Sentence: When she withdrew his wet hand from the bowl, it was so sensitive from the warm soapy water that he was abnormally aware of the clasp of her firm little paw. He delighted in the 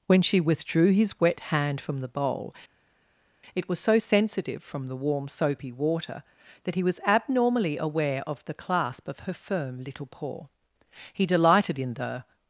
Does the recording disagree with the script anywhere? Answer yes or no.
no